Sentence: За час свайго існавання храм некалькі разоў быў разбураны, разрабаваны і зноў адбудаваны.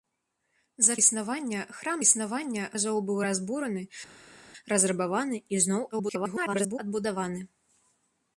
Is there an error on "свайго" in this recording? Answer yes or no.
yes